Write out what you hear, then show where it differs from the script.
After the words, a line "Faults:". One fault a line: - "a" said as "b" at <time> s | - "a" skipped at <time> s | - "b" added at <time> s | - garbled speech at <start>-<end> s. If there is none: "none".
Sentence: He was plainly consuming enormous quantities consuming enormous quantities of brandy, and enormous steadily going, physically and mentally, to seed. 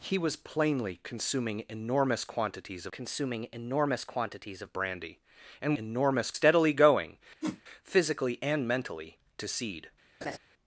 He was plainly consuming enormous quantities consuming enormous quantities of brandy, and enormous steadily going, physically and mentally, to seed.
Faults:
none